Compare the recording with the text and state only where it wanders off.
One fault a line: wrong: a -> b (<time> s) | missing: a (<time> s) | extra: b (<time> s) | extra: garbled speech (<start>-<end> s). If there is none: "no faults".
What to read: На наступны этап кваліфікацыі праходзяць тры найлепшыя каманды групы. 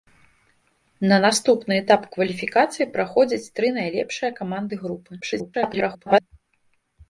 extra: garbled speech (5.2-6.2 s)